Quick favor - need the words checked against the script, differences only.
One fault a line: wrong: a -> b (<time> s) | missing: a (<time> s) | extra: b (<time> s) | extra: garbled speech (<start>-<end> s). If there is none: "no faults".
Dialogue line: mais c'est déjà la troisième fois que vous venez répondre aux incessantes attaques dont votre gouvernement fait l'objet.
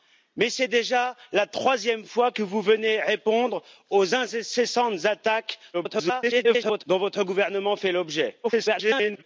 extra: garbled speech (5.7-6.8 s)
extra: garbled speech (8.4-9.2 s)